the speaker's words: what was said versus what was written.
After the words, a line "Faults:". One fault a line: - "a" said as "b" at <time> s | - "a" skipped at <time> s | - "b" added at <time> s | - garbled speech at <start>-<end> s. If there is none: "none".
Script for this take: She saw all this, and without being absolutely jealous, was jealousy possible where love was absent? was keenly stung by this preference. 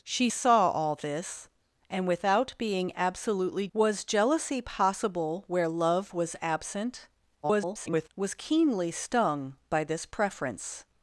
She saw all this, and without being absolutely was jealousy possible where love was absent? [garbled] was keenly stung by this preference.
Faults:
- "jealous" skipped at 3.7 s
- garbled speech at 7.4-8.1 s